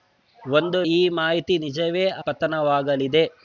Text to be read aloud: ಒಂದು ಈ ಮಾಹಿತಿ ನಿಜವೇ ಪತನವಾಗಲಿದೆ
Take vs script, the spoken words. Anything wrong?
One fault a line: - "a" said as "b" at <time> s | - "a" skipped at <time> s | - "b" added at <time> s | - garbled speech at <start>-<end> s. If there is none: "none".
none